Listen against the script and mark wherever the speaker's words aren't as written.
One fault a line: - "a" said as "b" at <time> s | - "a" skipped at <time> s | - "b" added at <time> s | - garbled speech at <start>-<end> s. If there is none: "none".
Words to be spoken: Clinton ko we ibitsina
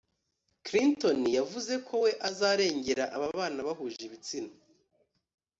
- "yavuze" added at 1.4 s
- "azarengera ababana bahuje" added at 2.3 s